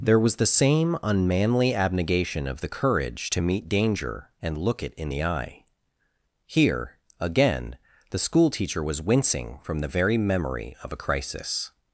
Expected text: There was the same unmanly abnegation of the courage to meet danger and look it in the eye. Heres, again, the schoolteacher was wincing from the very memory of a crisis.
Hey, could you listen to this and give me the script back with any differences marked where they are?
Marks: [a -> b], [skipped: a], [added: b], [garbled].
There was the same unmanly abnegation of the courage to meet danger and look it in the eye. [Heres, -> Here] again, the schoolteacher was wincing from the very memory of a crisis.